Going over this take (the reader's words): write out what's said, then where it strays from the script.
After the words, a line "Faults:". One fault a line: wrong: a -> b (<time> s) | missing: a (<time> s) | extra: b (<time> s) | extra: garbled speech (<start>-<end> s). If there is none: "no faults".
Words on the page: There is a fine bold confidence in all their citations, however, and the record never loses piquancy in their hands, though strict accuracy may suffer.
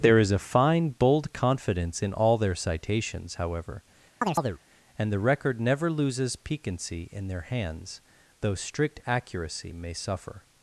There is a fine bold confidence in all their citations, however, and the record never loses piquancy in their hands, though strict accuracy may suffer.
Faults:
no faults